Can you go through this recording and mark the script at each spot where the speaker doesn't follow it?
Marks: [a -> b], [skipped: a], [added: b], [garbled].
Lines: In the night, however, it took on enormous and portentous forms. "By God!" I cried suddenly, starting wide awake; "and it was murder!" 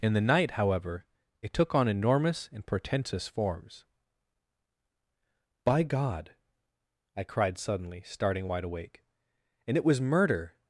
In the night, however, it took on enormous and portentous forms. "By God!" I cried suddenly, starting wide awake; "and it was murder!"